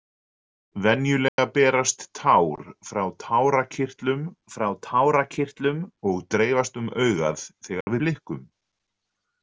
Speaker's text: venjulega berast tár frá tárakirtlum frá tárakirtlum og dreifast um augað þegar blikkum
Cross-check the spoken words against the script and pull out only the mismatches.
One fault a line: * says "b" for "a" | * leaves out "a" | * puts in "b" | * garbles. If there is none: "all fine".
all fine